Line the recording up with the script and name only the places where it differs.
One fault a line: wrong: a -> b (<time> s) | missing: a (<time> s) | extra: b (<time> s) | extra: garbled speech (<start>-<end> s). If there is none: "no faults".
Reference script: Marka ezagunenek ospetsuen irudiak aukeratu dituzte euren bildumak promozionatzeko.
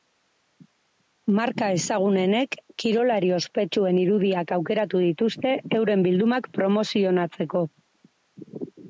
extra: kirolari (2.8 s)